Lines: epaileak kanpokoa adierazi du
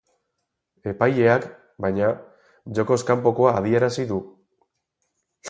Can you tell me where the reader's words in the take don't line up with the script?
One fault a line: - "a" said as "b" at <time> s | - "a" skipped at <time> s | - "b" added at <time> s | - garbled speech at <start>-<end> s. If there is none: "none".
- "baina jokoz" added at 1.9 s